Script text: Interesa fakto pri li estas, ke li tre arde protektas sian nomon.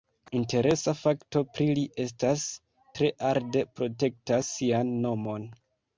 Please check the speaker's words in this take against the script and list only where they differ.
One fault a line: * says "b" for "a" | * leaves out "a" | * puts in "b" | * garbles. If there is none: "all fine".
* leaves out "ke li"